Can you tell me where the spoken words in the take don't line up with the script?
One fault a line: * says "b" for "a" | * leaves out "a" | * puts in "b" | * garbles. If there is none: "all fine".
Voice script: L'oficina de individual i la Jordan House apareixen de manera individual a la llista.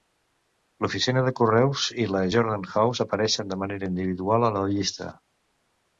* says "correus" for "individual"